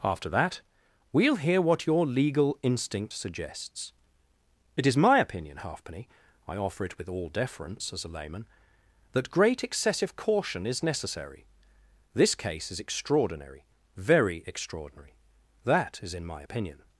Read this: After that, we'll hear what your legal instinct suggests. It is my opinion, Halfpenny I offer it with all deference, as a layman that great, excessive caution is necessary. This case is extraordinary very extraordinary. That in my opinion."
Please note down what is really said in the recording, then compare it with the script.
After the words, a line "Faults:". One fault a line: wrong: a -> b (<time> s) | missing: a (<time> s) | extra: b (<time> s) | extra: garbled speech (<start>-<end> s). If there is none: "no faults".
After that, we'll hear what your legal instinct suggests. It is my opinion, Halfpenny I offer it with all deference, as a layman that great, excessive caution is necessary. This case is extraordinary very extraordinary. That is in my opinion."
Faults:
extra: is (16.0 s)